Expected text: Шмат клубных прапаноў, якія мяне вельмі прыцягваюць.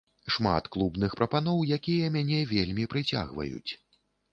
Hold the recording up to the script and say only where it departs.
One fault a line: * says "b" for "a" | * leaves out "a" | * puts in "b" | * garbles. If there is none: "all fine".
all fine